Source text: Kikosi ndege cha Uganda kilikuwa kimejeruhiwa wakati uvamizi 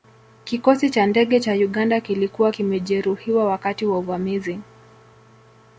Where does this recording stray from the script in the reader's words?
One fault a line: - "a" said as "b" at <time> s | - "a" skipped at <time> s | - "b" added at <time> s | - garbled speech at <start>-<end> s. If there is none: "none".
- "cha" added at 0.9 s
- "wa" added at 3.8 s